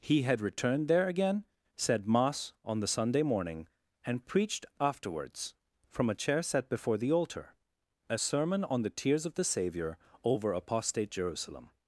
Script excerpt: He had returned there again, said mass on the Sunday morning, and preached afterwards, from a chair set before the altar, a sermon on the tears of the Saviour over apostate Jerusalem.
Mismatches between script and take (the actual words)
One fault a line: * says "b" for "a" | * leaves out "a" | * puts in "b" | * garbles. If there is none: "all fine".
all fine